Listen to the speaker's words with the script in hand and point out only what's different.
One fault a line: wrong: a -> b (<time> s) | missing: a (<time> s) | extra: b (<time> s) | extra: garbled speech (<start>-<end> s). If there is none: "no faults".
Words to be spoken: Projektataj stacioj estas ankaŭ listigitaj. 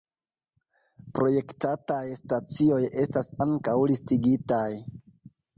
no faults